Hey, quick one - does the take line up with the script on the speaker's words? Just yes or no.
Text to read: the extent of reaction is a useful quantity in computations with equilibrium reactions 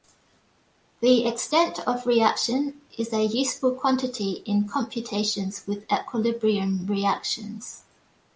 yes